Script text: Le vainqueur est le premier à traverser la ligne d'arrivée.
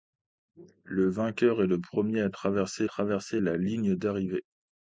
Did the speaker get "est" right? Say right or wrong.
right